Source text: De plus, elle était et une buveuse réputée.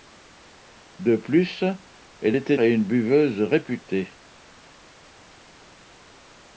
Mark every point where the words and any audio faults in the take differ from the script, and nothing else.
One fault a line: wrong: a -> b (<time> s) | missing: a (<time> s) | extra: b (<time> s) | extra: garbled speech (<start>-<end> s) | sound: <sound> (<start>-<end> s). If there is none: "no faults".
no faults